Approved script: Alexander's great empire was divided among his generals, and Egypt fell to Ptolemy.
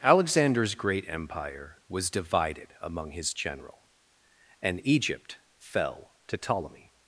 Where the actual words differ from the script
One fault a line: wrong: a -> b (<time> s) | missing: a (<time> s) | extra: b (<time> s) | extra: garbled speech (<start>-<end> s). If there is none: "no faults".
wrong: generals -> general (3.4 s)